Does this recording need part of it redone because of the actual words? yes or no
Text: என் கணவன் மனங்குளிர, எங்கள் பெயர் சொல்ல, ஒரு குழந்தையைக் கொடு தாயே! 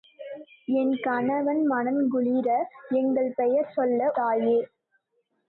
yes